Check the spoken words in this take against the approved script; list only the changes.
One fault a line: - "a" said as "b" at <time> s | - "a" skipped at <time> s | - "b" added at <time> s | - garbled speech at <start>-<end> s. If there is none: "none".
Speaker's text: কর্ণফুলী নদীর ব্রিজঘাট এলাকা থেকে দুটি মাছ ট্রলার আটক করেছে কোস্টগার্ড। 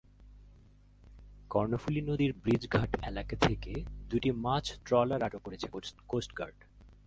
none